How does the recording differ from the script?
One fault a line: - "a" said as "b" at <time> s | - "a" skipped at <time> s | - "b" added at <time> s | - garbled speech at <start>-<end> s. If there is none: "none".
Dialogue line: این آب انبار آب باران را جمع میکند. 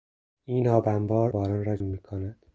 - "آب" skipped at 1.3 s
- "جمع" skipped at 1.8 s